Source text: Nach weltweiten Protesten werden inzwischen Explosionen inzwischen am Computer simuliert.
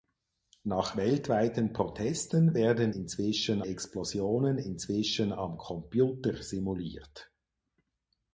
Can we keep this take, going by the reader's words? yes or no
yes